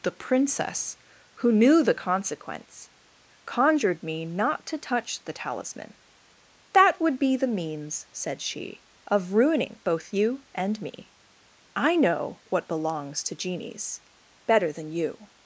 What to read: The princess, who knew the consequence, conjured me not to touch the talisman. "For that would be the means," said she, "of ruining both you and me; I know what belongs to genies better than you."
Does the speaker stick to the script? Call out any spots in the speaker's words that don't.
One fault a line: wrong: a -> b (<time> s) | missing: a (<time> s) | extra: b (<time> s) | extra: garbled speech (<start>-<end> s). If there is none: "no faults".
missing: For (5.9 s)